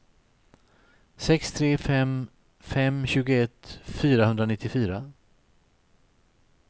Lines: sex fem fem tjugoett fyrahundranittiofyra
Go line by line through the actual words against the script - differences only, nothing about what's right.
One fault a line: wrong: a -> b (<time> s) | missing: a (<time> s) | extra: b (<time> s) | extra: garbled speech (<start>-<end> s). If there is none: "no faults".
extra: tre (1.6 s)